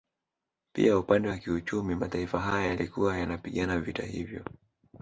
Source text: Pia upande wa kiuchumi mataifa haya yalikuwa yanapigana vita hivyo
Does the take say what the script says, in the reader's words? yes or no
yes